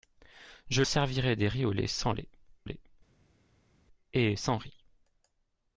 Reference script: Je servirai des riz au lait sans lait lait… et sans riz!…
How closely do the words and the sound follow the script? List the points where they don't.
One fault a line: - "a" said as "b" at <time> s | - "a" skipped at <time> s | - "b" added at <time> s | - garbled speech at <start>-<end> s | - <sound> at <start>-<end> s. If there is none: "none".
none